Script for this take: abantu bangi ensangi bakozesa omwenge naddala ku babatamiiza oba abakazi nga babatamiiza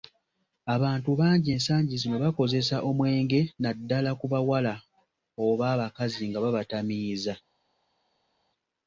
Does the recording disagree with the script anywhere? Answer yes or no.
yes